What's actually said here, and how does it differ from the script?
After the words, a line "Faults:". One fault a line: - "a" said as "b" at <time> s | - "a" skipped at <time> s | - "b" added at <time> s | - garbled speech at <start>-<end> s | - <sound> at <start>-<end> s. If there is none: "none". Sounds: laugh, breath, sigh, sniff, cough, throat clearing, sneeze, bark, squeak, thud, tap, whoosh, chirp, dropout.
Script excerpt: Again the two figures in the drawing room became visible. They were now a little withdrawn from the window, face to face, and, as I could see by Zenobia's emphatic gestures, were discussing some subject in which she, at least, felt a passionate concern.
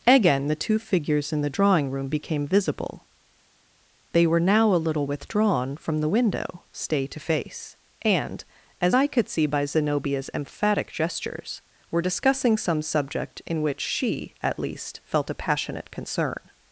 Again the two figures in the drawing room became visible. They were now a little withdrawn from the window, stay to face, and, as I could see by Zenobia's emphatic gestures, were discussing some subject in which she, at least, felt a passionate concern.
Faults:
- "face" said as "stay" at 6.7 s